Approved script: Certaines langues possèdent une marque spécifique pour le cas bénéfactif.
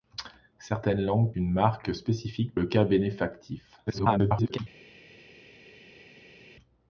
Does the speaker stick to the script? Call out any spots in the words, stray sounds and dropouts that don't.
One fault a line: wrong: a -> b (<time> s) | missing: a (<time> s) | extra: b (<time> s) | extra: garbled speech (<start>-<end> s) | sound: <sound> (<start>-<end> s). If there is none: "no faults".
missing: possèdent (1.3 s)
missing: pour (2.6 s)
extra: garbled speech (3.9-4.6 s)